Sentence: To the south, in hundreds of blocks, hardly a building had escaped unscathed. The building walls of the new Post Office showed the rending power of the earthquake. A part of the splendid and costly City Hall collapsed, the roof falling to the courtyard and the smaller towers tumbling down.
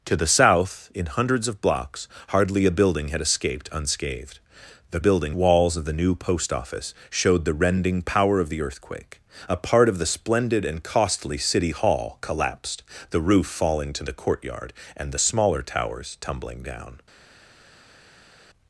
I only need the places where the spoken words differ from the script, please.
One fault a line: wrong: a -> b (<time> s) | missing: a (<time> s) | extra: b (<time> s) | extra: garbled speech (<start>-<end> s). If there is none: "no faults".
no faults